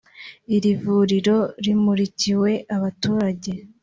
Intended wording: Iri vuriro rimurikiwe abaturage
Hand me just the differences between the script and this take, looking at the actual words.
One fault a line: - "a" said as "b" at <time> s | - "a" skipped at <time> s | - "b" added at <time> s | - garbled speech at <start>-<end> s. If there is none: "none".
none